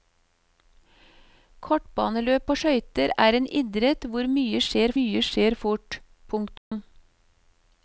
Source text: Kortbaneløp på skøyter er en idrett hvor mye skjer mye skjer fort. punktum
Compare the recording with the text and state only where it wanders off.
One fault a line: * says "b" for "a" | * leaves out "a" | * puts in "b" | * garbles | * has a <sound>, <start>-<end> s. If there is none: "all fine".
* has a dropout, 6.6-6.7 s